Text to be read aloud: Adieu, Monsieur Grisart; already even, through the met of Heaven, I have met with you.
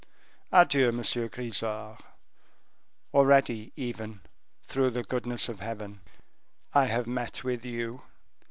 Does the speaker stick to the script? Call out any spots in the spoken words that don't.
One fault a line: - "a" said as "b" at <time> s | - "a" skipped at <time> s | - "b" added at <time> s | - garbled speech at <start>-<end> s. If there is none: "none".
- "met" said as "goodness" at 5.0 s